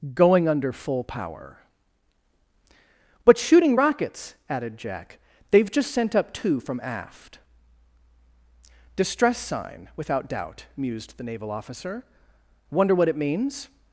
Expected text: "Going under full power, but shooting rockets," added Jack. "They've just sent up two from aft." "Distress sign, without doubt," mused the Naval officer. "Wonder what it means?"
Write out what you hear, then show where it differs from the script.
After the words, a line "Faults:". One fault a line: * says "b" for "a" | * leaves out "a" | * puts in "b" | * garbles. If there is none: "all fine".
"Going under full power, but shooting rockets," added Jack. "They've just sent up two from aft." "Distress sign, without doubt," mused the Naval officer. "Wonder what it means?"
Faults:
all fine